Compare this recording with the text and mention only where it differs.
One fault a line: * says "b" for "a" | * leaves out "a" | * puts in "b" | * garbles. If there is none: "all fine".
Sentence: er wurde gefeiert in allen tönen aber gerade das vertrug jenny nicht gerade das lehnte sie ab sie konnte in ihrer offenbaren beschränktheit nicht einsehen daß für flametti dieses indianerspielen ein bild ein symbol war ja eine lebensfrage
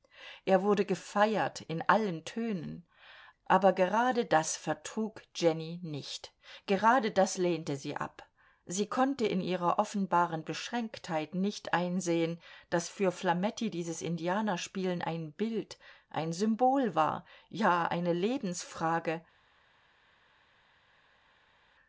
all fine